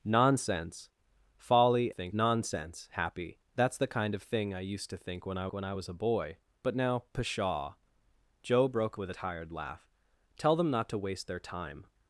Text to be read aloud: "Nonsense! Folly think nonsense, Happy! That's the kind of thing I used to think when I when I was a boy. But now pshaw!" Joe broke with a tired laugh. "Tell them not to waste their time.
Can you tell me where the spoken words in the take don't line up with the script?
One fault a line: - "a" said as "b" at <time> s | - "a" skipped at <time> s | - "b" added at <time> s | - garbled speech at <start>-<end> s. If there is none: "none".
none